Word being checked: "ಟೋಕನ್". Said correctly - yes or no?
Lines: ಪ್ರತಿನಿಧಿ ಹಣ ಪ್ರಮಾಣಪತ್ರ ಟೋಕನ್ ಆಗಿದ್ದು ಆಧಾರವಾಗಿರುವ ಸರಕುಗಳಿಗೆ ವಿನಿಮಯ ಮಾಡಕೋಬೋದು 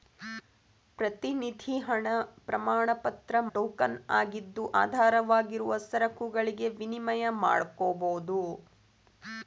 yes